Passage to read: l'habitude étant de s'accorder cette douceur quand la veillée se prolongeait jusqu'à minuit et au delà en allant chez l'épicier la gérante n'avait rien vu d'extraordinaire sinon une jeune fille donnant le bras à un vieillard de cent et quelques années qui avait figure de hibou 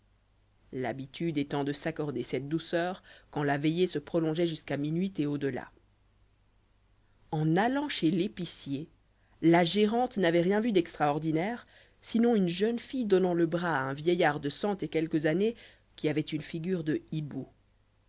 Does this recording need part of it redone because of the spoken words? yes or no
yes